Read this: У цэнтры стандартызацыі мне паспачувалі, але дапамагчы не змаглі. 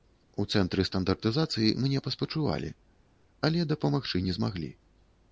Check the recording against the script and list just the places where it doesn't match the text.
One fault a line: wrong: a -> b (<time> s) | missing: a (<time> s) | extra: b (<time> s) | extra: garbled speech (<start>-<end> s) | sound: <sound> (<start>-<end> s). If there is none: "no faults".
no faults